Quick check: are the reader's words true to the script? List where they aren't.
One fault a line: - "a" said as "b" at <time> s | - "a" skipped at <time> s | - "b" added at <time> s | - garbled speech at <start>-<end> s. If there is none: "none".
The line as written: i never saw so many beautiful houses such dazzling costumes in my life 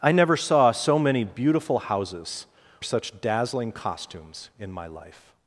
none